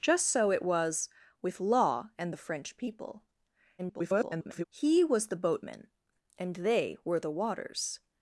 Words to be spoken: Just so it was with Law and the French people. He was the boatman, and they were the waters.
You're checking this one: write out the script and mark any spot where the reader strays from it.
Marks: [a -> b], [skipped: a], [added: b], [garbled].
Just so it was with Law and the French people. [garbled] He was the boatman, and they were the waters.